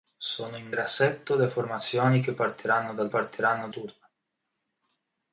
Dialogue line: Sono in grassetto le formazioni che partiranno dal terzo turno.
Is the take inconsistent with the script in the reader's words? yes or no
yes